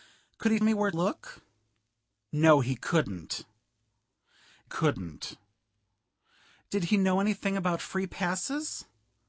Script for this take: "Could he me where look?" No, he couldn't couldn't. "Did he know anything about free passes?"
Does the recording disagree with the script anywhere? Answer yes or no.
no